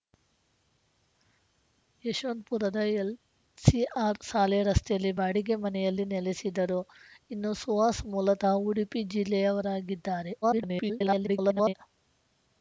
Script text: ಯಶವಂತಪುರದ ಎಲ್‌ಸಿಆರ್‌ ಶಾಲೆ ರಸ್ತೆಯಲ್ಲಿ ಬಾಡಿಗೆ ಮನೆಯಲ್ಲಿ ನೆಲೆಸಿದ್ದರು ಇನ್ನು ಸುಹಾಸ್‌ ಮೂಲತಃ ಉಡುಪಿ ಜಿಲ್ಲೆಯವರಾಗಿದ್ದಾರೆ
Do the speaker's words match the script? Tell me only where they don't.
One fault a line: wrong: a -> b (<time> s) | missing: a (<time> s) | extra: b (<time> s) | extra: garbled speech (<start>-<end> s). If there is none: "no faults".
extra: garbled speech (10.4-11.7 s)